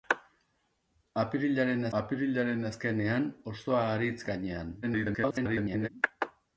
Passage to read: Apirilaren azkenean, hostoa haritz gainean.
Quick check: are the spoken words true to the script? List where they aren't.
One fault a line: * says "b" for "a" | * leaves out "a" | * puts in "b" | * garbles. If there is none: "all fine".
* puts in "apirilaren"
* garbles